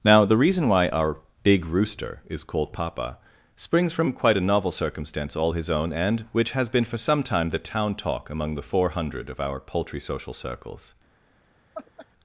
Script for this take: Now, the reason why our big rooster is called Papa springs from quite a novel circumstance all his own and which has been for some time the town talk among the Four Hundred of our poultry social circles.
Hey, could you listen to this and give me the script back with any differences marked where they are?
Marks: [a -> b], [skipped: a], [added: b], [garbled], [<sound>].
Now, the reason why our big rooster is called Papa springs from quite a novel circumstance all his own and which has been for some time the town talk among the Four Hundred of our poultry social circles. [laugh]